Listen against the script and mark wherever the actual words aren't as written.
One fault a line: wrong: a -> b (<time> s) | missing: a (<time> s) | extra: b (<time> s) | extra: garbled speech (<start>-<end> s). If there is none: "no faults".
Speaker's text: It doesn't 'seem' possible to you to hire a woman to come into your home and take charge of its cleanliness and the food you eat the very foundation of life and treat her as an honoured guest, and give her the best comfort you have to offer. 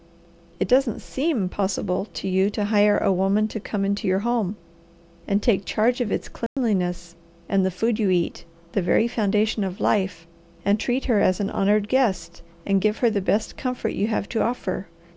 no faults